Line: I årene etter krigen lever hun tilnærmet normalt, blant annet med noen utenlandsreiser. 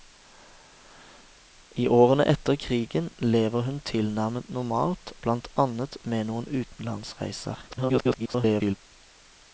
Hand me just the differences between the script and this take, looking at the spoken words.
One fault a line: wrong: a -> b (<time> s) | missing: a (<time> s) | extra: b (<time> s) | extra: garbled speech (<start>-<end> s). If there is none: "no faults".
extra: garbled speech (7.7-8.8 s)